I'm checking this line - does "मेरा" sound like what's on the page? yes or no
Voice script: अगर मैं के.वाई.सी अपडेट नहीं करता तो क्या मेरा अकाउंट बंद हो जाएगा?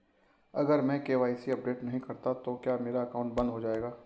yes